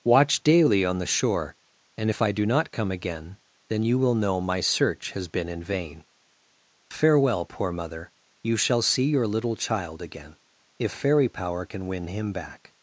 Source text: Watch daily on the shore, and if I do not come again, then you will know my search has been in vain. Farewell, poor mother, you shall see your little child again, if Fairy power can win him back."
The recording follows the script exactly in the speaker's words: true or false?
true